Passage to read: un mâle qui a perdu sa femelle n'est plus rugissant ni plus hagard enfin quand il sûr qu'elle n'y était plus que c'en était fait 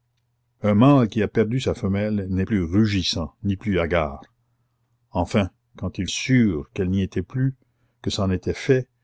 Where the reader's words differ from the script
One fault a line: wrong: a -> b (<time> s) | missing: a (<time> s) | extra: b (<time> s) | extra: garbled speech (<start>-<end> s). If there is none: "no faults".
no faults